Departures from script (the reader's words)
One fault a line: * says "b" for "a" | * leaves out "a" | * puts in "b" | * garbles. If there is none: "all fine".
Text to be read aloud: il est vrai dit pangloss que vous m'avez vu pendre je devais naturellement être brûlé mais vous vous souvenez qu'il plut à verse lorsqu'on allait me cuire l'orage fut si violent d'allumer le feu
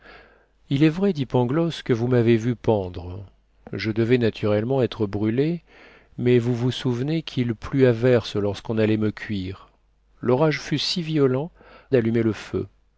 all fine